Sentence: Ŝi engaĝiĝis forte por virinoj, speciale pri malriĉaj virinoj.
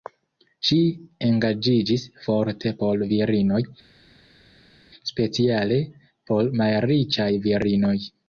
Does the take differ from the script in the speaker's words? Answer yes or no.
yes